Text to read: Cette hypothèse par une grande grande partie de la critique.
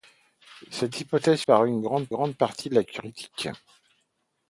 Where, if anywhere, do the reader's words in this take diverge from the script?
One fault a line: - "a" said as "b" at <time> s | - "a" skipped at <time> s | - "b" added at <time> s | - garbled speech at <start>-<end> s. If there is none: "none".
none